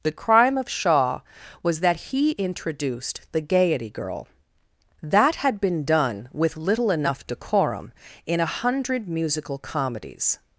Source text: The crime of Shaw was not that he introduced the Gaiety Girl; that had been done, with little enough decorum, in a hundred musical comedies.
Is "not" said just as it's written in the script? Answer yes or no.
no